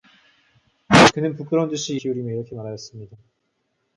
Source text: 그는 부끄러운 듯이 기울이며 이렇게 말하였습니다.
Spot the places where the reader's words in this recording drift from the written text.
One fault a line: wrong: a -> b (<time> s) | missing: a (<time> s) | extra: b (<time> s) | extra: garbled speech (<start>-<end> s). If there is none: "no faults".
no faults